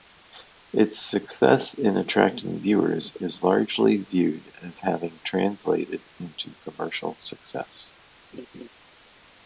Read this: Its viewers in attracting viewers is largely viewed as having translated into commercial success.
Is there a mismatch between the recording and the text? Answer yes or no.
yes